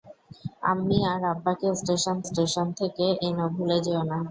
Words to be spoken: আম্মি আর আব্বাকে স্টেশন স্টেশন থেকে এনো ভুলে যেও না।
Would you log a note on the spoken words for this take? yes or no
no